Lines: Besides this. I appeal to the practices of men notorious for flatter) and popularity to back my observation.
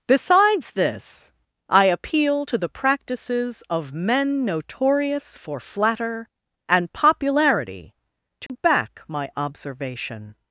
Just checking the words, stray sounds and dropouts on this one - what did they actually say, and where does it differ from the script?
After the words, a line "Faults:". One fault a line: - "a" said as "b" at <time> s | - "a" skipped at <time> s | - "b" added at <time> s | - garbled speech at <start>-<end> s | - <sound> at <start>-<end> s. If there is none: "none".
Besides this. I appeal to the practices of men notorious for flatter) and popularity to back my observation.
Faults:
- dropout at 8.5-8.5 s